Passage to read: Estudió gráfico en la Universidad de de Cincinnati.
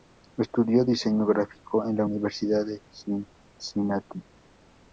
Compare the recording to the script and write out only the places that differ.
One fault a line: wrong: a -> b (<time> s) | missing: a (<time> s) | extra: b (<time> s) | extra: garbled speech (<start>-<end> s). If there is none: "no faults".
extra: diseño (0.8 s)
missing: de (2.8 s)